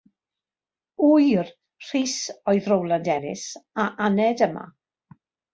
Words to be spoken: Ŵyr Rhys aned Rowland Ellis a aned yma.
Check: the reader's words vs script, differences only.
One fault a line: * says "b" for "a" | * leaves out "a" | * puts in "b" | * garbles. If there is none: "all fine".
* says "oedd" for "aned"